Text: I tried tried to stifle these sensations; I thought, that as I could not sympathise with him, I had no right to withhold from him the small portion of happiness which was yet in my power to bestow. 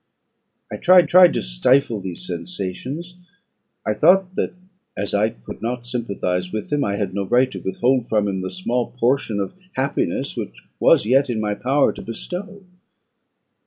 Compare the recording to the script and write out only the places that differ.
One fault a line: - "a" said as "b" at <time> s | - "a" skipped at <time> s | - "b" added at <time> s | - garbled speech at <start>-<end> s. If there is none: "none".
none